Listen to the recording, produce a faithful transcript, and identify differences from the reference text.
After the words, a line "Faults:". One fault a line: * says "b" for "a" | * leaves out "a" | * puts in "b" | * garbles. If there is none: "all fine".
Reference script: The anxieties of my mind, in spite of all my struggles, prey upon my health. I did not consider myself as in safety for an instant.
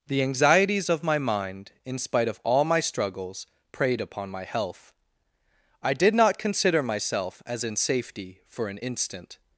The anxieties of my mind, in spite of all my struggles, preyed upon my health. I did not consider myself as in safety for an instant.
Faults:
* says "preyed" for "prey"